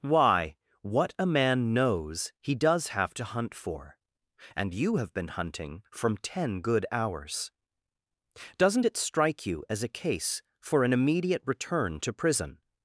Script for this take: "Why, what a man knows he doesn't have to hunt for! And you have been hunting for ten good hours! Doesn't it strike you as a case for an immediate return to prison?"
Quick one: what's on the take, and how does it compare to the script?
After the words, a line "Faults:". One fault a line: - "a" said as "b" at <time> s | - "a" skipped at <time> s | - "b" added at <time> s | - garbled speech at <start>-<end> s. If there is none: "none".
"Why, what a man knows he does have to hunt for! And you have been hunting from ten good hours! Doesn't it strike you as a case for an immediate return to prison?"
Faults:
- "doesn't" said as "does" at 2.5 s
- "for" said as "from" at 5.9 s